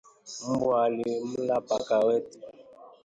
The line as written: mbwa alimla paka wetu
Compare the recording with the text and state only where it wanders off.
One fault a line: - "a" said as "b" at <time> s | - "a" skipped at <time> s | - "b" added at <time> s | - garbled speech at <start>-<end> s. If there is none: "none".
none